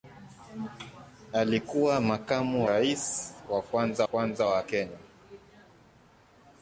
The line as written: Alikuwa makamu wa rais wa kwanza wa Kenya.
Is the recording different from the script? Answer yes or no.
yes